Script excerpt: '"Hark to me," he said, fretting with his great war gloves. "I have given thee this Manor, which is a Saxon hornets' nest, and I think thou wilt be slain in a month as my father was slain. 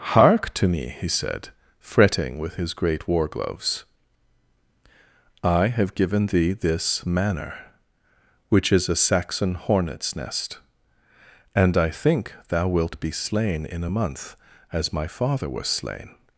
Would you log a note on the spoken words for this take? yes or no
no